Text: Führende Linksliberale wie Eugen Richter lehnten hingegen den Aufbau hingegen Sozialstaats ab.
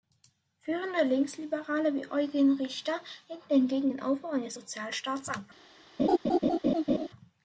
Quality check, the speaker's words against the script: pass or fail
fail